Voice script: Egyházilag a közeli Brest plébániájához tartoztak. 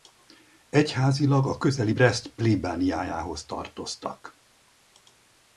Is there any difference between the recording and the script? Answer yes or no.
no